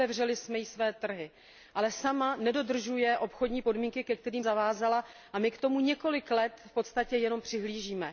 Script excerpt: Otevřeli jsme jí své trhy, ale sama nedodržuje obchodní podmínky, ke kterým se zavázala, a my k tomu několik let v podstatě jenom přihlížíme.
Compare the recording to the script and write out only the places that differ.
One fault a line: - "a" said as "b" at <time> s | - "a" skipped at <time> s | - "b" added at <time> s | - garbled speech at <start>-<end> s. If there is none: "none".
- "se" skipped at 4.4 s